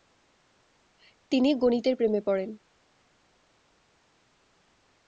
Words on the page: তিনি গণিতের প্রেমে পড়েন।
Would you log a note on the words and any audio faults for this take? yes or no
no